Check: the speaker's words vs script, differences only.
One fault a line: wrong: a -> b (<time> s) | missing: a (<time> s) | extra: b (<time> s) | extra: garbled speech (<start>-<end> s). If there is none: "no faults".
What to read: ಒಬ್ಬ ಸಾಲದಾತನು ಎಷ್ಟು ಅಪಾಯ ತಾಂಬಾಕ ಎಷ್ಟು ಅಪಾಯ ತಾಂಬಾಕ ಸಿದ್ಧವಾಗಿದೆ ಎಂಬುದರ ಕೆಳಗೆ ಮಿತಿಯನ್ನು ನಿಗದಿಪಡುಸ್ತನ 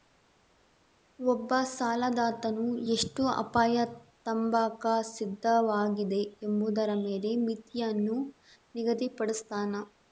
missing: ಎಷ್ಟು ಅಪಾಯ ತಾಂಬಾಕ (4.8 s)
wrong: ಕೆಳಗೆ -> ಮೇಲೆ (7.0 s)